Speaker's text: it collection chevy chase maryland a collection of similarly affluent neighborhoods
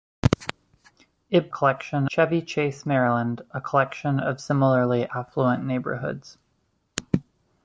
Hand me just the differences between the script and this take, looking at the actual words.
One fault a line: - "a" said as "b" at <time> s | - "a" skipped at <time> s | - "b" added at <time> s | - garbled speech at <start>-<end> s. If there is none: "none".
none